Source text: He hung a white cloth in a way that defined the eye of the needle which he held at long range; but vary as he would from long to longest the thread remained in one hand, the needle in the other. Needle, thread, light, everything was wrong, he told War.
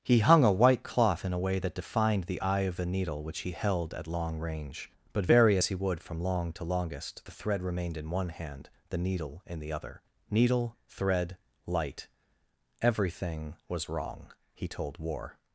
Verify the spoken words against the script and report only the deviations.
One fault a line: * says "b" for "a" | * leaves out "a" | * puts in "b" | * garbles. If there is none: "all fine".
all fine